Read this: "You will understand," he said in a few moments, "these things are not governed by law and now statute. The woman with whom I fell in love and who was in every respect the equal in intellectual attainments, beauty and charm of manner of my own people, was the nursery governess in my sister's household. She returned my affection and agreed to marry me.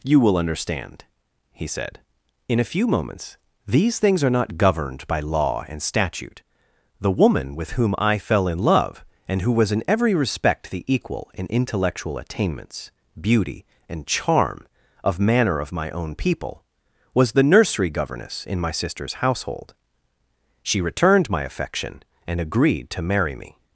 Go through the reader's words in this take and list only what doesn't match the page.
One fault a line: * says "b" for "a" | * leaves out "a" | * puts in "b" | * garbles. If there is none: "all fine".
* leaves out "now"